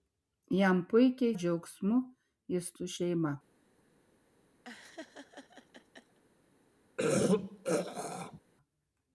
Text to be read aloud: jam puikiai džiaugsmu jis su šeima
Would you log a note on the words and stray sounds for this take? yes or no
yes